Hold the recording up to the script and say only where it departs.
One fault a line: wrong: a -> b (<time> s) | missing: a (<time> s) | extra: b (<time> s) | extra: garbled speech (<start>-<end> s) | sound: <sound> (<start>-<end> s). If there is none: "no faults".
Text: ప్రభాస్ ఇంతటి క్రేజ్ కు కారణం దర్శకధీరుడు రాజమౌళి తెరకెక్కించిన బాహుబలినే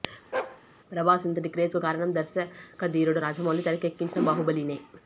sound: bark (0.3-0.6 s)